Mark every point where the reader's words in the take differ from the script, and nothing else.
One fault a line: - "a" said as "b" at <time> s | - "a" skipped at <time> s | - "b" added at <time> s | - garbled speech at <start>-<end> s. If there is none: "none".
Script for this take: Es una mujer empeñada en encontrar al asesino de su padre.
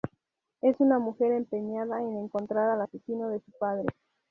none